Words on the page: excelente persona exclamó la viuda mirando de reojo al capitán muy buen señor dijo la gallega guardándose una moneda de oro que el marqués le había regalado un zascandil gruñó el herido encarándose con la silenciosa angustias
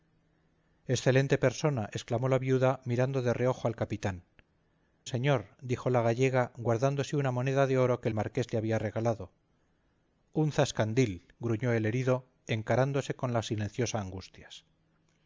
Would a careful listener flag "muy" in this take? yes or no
yes